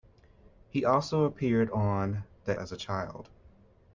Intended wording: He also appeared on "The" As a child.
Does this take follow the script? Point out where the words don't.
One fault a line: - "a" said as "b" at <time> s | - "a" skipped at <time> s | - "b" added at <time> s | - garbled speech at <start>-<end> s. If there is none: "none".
none